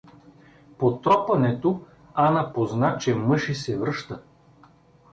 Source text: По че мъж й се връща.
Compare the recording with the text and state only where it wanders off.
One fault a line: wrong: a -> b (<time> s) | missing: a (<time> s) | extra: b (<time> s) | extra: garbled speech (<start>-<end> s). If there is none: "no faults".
extra: тропането Ана позна (1.0 s)